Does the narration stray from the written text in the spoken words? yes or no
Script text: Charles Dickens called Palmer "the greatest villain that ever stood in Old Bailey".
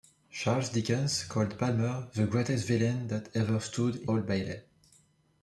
no